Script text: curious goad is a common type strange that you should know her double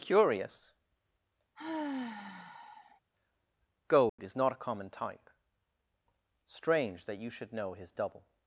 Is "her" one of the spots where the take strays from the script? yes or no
yes